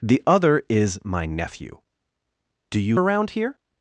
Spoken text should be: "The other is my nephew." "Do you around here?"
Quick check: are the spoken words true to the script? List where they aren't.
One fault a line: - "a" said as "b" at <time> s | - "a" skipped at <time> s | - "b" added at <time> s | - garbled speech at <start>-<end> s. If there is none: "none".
none